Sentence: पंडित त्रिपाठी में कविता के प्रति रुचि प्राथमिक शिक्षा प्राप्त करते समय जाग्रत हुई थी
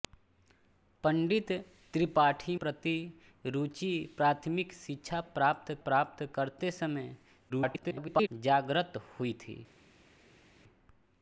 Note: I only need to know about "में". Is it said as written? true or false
false